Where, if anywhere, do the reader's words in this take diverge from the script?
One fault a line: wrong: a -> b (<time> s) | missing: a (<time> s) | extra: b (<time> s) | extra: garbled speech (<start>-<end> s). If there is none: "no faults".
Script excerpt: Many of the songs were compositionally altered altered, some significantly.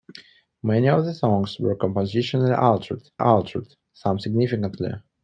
no faults